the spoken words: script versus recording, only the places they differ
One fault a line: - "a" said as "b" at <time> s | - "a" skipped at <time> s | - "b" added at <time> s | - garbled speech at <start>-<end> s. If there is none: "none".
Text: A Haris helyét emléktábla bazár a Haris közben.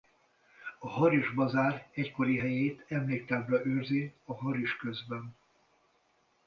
- "bazár egykori" added at 1.3 s
- "bazár" said as "őrzi" at 3.6 s